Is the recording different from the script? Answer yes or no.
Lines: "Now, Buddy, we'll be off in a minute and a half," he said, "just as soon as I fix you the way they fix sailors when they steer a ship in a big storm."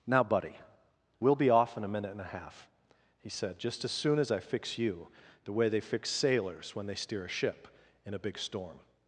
no